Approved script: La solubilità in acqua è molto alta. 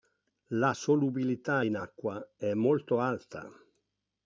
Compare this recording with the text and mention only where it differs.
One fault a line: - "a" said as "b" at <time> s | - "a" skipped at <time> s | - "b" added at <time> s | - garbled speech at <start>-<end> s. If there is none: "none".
none